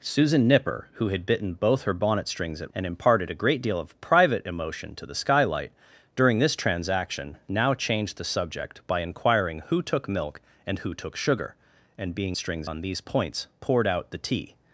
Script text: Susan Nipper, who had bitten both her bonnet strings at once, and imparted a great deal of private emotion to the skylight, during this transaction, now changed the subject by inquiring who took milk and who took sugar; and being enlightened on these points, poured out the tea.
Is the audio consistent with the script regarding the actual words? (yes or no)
no